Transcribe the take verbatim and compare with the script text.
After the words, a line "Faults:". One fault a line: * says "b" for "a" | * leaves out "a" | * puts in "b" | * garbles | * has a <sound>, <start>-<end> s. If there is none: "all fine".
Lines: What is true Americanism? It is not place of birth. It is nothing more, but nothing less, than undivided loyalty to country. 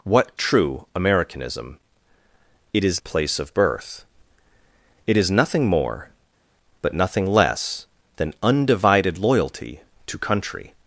What true Americanism? It is place of birth. It is nothing more, but nothing less, than undivided loyalty to country.
Faults:
* leaves out "is"
* leaves out "not"